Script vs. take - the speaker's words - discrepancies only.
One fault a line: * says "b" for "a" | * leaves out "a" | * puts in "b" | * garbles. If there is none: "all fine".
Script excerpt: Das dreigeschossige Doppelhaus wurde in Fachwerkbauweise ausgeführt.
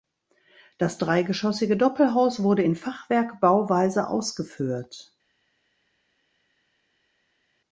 all fine